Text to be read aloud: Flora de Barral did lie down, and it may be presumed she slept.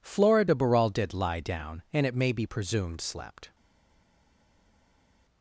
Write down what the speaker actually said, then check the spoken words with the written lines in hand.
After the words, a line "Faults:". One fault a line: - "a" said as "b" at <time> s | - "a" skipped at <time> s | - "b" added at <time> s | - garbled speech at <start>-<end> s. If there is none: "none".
Flora de Barral did lie down, and it may be presumed slept.
Faults:
- "she" skipped at 3.0 s